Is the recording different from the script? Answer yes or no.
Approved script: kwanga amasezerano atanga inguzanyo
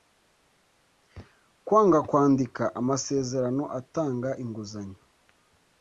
yes